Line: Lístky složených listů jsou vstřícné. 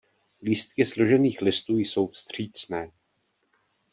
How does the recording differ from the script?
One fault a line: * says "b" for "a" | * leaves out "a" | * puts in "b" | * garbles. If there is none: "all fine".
all fine